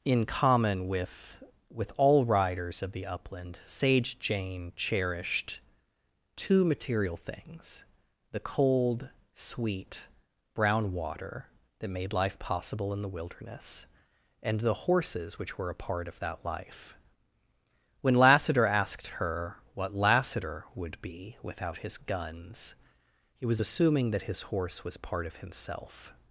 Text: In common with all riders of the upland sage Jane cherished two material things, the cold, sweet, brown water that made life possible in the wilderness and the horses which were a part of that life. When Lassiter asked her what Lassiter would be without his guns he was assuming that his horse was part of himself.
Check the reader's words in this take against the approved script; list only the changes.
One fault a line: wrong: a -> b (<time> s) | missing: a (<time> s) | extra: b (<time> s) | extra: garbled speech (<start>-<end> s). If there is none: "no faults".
extra: with (1.7 s)